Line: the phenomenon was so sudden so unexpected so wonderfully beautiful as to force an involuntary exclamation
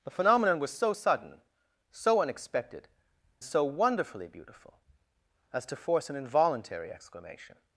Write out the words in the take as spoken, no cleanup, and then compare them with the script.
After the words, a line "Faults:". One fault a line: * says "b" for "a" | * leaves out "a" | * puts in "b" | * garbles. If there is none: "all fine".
the phenomenon was so sudden so unexpected so wonderfully beautiful as to force an involuntary exclamation
Faults:
all fine